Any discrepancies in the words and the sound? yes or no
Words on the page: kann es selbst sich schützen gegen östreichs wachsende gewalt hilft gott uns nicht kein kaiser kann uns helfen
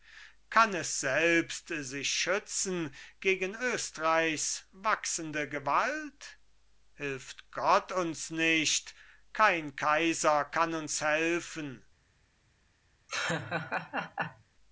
yes